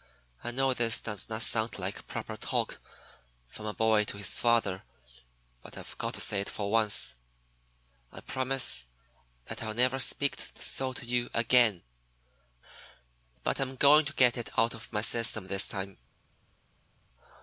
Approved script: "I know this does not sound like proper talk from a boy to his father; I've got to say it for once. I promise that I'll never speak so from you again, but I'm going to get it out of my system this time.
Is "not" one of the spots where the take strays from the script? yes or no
no